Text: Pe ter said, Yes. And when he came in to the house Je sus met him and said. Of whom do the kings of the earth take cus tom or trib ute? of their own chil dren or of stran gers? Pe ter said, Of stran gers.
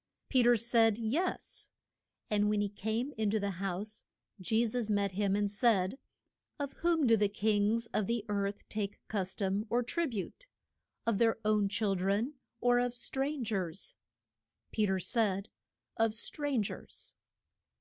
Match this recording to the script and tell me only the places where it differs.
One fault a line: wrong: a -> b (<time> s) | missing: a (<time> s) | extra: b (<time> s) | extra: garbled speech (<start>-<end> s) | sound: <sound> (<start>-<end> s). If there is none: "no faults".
no faults